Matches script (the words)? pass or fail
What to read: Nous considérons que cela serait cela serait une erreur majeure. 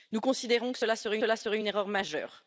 pass